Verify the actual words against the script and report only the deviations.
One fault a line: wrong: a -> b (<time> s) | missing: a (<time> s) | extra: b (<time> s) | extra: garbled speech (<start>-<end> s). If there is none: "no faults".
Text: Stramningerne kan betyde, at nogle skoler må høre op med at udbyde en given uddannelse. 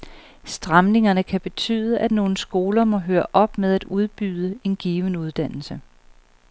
no faults